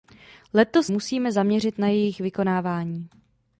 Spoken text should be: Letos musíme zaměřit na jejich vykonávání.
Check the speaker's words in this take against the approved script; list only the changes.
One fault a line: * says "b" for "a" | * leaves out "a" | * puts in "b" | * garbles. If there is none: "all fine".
all fine